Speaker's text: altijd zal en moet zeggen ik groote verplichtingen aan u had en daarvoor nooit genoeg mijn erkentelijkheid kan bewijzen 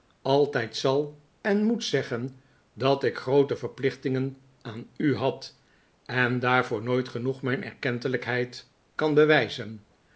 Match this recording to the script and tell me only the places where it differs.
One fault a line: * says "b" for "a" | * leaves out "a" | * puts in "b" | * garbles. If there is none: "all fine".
* puts in "dat"